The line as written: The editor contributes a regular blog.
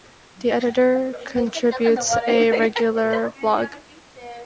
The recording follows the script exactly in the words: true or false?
true